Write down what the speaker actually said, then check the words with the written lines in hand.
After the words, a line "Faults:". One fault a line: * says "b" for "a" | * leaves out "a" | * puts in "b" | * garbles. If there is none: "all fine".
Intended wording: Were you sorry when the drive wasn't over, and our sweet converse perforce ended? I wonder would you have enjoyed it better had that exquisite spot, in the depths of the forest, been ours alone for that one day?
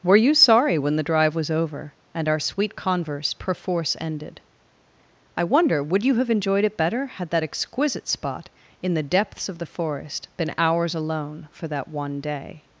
Were you sorry when the drive was over, and our sweet converse perforce ended? I wonder would you have enjoyed it better had that exquisite spot, in the depths of the forest, been ours alone for that one day?
Faults:
* says "was" for "wasn't"